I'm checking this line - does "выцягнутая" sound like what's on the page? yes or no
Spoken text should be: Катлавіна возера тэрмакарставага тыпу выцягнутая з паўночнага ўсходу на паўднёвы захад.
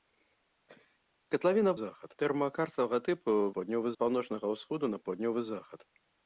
no